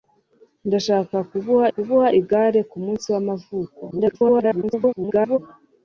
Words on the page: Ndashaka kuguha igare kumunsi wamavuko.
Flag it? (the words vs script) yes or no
yes